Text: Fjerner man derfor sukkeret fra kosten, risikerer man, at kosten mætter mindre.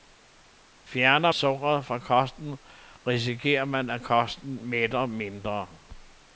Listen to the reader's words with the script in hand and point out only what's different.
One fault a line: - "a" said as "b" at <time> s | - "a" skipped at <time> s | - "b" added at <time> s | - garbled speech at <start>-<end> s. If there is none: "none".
- "man derfor" skipped at 1.3 s